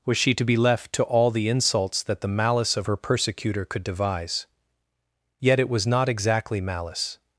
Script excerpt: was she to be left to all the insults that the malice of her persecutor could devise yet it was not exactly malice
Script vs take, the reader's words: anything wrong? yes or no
no